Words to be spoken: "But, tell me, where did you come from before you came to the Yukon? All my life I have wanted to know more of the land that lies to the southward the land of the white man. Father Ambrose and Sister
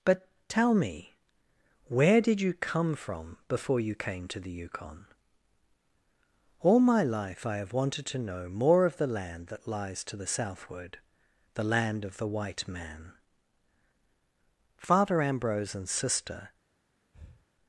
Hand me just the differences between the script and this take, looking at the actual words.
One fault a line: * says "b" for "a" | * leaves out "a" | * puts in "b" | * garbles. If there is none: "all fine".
all fine